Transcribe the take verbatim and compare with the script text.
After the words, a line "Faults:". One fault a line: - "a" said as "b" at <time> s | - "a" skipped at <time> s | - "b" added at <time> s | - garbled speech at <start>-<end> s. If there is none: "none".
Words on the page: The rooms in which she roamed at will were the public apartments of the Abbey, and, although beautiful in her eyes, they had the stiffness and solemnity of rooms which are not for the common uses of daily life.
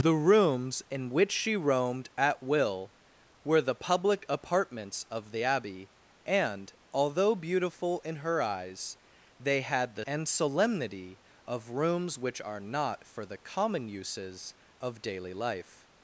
The rooms in which she roamed at will were the public apartments of the Abbey, and, although beautiful in her eyes, they had the and solemnity of rooms which are not for the common uses of daily life.
Faults:
- "stiffness" skipped at 10.1 s